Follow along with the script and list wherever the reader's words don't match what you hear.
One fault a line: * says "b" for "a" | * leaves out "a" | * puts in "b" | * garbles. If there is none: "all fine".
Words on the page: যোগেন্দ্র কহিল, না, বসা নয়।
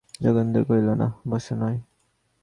all fine